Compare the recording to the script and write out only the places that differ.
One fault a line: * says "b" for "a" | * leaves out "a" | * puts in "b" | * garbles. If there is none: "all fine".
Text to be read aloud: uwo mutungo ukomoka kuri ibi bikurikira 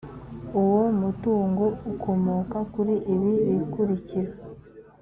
all fine